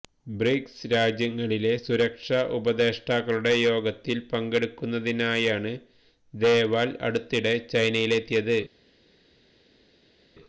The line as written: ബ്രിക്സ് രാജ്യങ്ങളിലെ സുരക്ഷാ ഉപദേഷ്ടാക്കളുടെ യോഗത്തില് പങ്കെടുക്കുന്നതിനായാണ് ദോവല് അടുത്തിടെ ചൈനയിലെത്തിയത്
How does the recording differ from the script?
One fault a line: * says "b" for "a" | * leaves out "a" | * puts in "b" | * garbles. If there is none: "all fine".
all fine